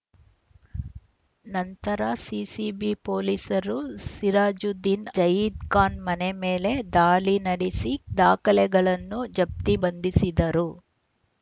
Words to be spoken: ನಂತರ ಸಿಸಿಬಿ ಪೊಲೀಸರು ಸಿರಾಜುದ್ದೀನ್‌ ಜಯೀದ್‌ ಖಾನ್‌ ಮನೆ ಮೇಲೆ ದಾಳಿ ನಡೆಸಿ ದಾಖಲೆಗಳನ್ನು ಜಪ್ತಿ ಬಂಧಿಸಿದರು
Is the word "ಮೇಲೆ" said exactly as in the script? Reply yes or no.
yes